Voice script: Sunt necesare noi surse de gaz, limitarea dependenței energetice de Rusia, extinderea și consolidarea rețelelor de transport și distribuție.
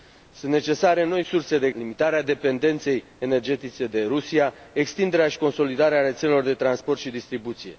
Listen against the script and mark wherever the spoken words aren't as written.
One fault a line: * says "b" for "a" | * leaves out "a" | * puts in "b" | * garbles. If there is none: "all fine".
* leaves out "gaz"